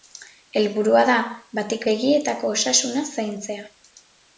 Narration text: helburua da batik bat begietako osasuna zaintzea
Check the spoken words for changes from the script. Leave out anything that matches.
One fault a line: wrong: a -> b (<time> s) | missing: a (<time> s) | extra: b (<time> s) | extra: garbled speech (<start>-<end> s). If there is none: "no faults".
missing: bat (1.8 s)